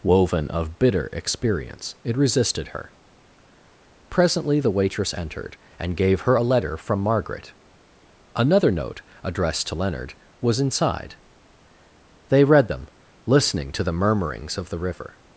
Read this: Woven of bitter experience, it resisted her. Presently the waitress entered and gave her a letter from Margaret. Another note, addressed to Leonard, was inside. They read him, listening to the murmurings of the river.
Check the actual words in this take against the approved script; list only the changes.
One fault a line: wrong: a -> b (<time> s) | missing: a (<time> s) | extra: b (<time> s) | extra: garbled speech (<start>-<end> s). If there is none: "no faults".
wrong: him -> them (12.7 s)